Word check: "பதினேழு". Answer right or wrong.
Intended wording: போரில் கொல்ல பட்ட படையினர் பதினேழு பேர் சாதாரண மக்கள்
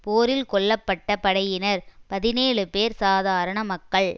right